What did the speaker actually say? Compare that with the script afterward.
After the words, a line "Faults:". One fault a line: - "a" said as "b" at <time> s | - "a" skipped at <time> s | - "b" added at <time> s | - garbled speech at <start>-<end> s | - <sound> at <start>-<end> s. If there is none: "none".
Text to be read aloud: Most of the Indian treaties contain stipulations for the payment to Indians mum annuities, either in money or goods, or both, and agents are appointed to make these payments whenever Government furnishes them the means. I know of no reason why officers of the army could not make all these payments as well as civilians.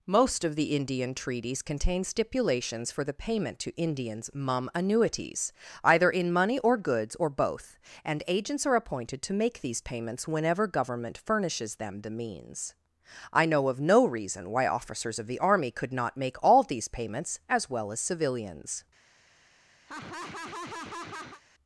Most of the Indian treaties contain stipulations for the payment to Indians mum annuities, either in money or goods, or both, and agents are appointed to make these payments whenever Government furnishes them the means. I know of no reason why officers of the army could not make all these payments as well as civilians.
Faults:
- laugh at 19.9-21.4 s